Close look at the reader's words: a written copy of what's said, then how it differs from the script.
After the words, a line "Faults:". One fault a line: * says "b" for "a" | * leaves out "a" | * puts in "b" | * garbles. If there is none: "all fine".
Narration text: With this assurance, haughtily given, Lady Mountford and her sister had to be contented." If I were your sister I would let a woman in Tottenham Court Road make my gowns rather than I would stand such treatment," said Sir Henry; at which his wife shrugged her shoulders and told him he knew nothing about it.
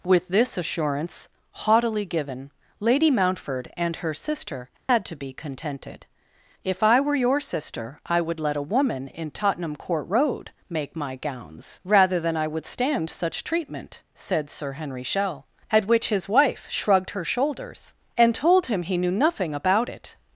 With this assurance, haughtily given, Lady Mountford and her sister had to be contented." If I were your sister I would let a woman in Tottenham Court Road make my gowns rather than I would stand such treatment," said Sir Henry; shell at which his wife shrugged her shoulders and told him he knew nothing about it.
Faults:
* puts in "shell"